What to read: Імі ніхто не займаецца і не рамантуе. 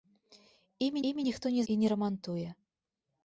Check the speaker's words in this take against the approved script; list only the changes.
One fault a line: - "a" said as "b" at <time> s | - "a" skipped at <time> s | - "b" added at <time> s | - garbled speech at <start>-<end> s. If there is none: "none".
- "імі" added at 1.1 s
- "займаецца" skipped at 1.6 s